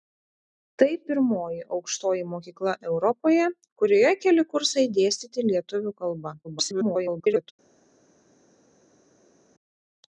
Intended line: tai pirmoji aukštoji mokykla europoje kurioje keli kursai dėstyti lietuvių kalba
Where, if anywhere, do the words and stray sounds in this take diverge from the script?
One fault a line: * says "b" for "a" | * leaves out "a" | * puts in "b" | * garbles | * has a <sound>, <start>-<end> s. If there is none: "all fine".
* garbles